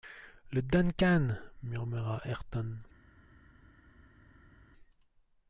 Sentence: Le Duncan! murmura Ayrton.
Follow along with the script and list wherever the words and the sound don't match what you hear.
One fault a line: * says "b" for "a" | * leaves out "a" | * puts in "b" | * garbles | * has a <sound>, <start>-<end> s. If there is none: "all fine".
all fine